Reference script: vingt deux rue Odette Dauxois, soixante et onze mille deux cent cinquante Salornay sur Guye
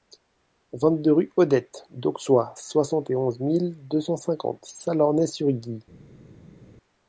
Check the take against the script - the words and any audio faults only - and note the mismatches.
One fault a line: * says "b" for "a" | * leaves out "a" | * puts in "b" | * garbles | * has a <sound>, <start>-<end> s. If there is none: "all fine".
all fine